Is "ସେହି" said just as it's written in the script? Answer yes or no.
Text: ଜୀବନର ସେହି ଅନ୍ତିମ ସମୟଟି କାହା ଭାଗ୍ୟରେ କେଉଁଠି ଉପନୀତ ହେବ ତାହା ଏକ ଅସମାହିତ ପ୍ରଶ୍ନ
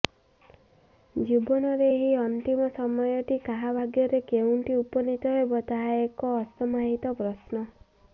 no